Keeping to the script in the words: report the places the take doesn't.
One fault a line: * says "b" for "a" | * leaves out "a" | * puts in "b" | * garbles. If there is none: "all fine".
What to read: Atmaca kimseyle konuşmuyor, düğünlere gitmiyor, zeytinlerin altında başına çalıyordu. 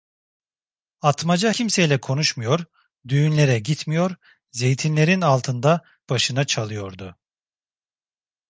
all fine